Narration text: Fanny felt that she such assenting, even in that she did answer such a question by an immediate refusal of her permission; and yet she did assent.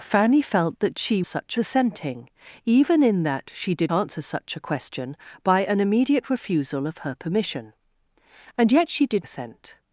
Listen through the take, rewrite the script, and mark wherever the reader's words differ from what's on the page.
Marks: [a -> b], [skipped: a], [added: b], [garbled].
Fanny felt that she such assenting, even in that she did answer such a question by an immediate refusal of her permission; and yet she did assent.